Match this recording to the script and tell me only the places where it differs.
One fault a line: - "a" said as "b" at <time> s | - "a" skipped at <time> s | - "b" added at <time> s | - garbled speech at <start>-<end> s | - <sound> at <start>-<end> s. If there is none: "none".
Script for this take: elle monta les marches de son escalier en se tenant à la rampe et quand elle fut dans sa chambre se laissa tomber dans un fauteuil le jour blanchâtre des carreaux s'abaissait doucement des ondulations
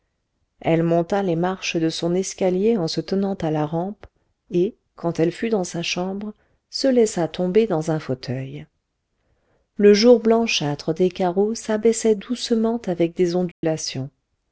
- "avec" added at 12.9 s
- dropout at 13.5-13.6 s